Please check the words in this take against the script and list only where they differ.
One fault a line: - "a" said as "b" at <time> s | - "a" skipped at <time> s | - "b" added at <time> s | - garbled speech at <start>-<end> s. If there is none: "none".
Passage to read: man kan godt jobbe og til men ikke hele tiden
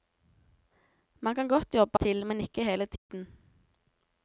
none